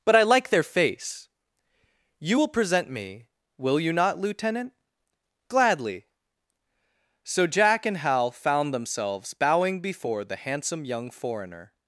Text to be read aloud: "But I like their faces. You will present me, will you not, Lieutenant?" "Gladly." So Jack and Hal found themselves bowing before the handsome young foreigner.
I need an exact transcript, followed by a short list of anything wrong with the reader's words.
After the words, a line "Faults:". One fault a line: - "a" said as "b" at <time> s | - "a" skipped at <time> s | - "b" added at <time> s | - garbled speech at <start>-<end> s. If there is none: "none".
"But I like their face. You will present me, will you not, Lieutenant?" "Gladly." So Jack and Hal found themselves bowing before the handsome young foreigner.
Faults:
- "faces" said as "face" at 0.6 s